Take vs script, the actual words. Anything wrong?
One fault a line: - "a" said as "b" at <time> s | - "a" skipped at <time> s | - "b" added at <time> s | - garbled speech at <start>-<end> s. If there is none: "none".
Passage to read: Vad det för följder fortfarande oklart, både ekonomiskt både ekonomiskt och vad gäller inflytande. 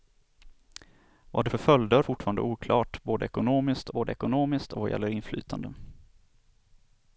none